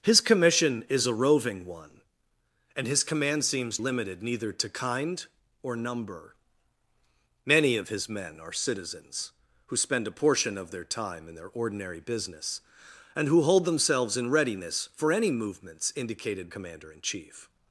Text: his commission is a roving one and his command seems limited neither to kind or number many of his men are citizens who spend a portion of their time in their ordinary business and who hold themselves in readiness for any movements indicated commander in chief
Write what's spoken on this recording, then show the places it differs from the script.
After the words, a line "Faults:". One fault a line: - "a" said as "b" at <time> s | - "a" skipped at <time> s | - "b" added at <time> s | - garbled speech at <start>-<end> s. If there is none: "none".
his commission is a roving one and his command seems limited neither to kind or number many of his men are citizens who spend a portion of their time in their ordinary business and who hold themselves in readiness for any movements indicated commander in chief
Faults:
none